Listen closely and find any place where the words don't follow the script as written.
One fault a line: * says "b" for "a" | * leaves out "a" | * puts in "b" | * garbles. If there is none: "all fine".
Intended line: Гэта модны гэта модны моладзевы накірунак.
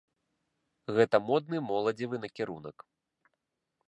* leaves out "гэта модны"